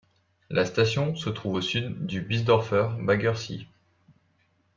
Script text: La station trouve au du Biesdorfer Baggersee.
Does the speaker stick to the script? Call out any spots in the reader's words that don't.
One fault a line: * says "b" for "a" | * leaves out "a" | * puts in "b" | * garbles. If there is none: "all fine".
* puts in "se"
* puts in "sud"